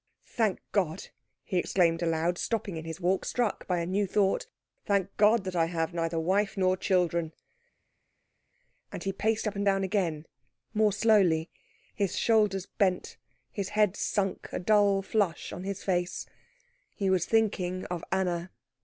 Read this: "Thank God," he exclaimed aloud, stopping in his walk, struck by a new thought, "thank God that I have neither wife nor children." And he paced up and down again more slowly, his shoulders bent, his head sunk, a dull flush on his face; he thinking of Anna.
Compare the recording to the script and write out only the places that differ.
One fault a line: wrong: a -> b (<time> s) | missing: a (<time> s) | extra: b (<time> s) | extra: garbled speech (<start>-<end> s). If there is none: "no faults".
extra: was (17.1 s)